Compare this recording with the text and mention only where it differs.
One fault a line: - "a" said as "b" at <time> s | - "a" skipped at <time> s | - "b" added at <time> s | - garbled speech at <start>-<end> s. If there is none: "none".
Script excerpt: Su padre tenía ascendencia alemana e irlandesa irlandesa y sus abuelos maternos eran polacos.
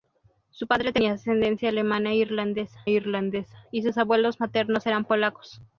none